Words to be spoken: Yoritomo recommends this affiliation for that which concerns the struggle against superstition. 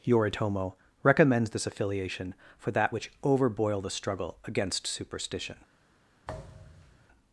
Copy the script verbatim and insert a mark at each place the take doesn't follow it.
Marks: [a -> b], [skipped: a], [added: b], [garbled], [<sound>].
Yoritomo recommends this affiliation for that which [concerns -> overboil] the struggle against superstition. [thud]